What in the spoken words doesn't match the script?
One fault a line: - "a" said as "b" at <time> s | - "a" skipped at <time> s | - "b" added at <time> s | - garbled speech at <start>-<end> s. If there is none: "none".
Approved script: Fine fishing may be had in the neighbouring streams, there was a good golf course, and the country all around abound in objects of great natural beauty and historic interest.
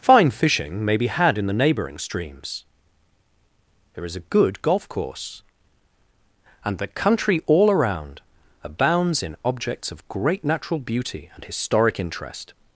- "was" said as "is" at 4.0 s
- "abound" said as "abounds" at 8.6 s